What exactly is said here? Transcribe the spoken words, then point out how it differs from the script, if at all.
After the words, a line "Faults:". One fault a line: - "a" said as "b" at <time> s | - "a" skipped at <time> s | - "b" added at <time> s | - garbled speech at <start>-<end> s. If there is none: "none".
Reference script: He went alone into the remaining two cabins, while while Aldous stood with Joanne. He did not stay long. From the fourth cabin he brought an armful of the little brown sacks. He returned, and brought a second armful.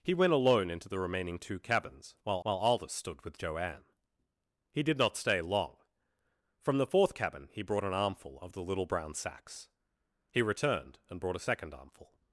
He went alone into the remaining two cabins, while while Aldous stood with Joanne. He did not stay long. From the fourth cabin he brought an armful of the little brown sacks. He returned, and brought a second armful.
Faults:
none